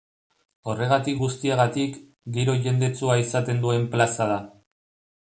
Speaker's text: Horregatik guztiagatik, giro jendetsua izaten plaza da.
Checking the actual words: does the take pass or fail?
fail